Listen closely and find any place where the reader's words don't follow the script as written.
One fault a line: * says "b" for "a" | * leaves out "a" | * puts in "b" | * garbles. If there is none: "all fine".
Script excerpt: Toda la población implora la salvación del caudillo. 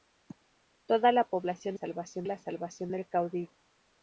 * says "salvación" for "implora"